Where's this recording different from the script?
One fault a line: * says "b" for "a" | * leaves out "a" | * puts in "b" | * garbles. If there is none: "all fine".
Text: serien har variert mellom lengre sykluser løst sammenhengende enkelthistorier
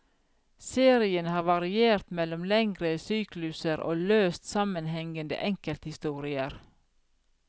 * puts in "og"